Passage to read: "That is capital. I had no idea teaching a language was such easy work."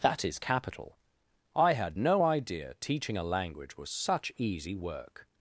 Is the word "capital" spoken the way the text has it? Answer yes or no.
yes